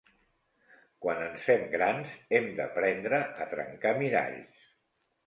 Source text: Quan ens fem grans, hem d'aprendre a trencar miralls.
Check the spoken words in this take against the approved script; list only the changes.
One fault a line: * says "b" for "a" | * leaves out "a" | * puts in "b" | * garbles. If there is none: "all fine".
all fine